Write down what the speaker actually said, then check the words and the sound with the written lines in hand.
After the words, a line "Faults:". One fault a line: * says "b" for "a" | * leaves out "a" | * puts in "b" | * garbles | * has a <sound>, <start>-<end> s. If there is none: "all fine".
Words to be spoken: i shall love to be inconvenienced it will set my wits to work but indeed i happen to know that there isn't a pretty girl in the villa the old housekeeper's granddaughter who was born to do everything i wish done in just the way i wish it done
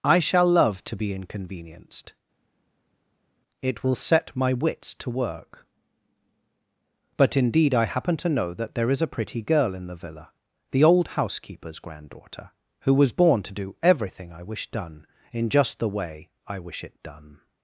i shall love to be inconvenienced it will set my wits to work but indeed i happen to know that there is a pretty girl in the villa the old housekeeper's granddaughter who was born to do everything i wish done in just the way i wish it done
Faults:
* says "is" for "isn't"